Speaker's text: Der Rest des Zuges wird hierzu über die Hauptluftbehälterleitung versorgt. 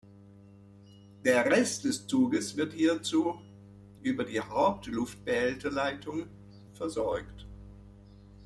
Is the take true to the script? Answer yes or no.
yes